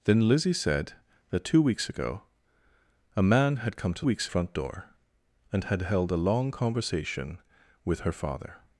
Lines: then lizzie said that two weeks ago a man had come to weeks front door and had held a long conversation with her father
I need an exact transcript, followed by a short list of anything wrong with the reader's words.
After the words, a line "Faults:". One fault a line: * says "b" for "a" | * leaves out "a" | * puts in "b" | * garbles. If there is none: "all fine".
then lizzie said that two weeks ago a man had come to weeks front door and had held a long conversation with her father
Faults:
all fine